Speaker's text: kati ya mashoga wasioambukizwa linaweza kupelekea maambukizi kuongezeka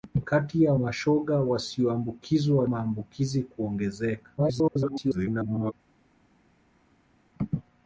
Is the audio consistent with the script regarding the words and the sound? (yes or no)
no